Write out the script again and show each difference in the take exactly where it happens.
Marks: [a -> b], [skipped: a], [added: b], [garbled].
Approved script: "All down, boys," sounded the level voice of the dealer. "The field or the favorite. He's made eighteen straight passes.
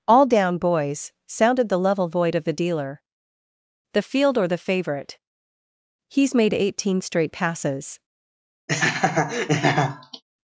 "All down, boys," sounded the level [voice -> void] of the dealer. "The field or the favorite. He's made eighteen straight passes.